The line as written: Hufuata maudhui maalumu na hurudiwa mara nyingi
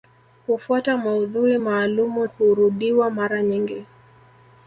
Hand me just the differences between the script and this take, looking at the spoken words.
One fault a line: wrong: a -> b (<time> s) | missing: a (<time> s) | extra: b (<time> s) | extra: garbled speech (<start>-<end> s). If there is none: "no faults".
missing: na (2.3 s)